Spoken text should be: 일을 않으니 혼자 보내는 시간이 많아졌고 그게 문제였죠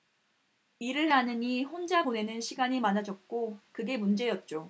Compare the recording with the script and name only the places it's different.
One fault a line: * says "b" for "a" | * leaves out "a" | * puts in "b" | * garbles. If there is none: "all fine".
all fine